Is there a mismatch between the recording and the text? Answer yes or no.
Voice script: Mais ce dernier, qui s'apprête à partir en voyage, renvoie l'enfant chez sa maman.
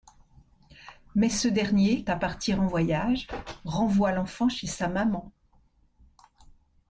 yes